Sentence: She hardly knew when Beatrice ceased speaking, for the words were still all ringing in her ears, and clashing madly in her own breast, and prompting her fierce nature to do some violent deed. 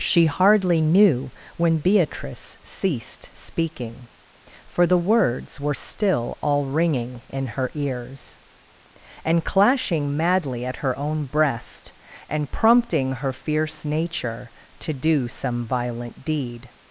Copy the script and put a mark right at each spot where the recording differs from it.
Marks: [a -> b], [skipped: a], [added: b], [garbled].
She hardly knew when Beatrice ceased speaking, for the words were still all ringing in her ears, and clashing madly [in -> at] her own breast, and prompting her fierce nature to do some violent deed.